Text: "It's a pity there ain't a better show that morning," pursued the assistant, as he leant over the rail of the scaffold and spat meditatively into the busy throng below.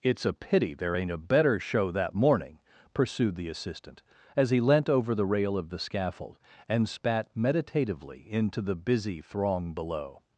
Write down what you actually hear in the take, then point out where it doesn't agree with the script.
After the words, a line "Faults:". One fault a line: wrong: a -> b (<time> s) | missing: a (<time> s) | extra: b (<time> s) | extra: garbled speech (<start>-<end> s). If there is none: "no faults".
"It's a pity there ain't a better show that morning," pursued the assistant, as he leant over the rail of the scaffold and spat meditatively into the busy throng below.
Faults:
no faults